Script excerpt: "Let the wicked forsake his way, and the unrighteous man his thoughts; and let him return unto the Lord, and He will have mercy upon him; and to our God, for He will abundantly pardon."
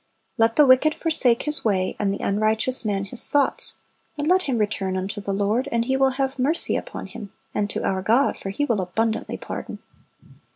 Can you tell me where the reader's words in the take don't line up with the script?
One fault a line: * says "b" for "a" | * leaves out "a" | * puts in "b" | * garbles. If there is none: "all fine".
all fine